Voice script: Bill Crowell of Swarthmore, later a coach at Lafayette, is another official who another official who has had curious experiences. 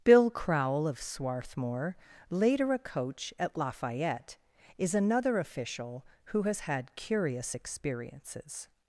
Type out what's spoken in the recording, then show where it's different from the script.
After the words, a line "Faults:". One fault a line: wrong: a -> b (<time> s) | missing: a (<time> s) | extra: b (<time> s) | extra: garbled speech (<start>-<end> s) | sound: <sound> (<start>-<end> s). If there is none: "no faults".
Bill Crowell of Swarthmore, later a coach at Lafayette, is another official who has had curious experiences.
Faults:
missing: another official who (6.4 s)